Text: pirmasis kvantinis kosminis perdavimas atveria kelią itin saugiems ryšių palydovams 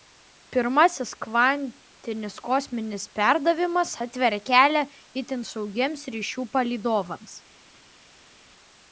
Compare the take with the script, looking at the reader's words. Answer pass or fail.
pass